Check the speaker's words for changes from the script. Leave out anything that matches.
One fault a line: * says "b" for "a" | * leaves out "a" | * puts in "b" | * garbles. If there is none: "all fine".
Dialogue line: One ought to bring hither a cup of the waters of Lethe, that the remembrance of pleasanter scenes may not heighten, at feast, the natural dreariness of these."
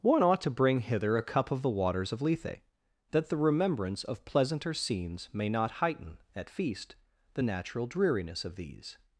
all fine